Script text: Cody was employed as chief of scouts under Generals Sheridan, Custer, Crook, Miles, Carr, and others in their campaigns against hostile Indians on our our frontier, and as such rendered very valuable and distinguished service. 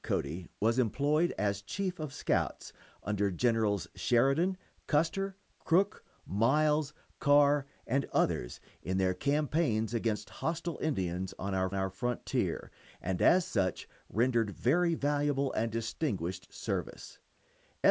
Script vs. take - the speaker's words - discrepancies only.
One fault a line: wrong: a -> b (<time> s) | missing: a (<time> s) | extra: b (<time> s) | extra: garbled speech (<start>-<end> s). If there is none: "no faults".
no faults